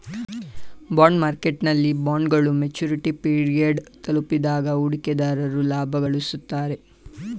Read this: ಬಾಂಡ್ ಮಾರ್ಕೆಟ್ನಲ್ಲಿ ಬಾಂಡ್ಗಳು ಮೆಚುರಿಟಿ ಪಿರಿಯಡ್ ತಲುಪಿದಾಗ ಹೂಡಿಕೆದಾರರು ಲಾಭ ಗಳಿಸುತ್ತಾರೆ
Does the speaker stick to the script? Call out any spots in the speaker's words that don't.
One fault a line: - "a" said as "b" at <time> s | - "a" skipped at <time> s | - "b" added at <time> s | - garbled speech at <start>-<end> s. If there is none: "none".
none